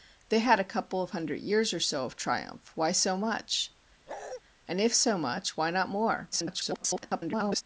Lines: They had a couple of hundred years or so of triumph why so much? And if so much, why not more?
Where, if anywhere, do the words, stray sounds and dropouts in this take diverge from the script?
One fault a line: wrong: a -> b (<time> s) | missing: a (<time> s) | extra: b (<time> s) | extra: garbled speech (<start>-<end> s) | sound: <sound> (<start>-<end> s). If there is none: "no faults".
sound: bark (4.1-4.4 s)
extra: garbled speech (6.3-7.6 s)